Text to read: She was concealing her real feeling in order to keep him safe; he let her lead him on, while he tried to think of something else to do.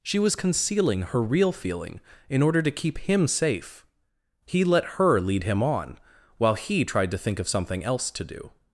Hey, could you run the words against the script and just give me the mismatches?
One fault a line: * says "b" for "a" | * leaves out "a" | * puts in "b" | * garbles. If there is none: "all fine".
all fine